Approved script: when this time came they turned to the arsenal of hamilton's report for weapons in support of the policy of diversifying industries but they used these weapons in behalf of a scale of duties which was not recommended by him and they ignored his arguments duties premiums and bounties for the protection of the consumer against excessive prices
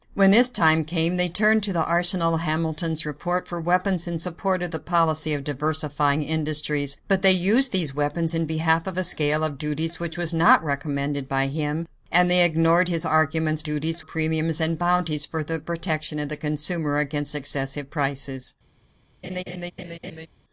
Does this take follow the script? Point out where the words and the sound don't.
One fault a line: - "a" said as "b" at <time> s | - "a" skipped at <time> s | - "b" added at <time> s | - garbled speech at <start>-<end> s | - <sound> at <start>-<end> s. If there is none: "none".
- laugh at 19.2-20.3 s